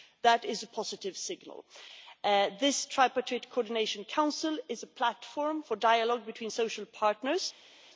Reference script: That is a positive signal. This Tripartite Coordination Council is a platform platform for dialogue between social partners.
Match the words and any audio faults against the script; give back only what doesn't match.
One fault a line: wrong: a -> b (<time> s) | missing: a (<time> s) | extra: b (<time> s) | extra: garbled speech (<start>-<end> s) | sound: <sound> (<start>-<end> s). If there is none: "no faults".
missing: platform (5.6 s)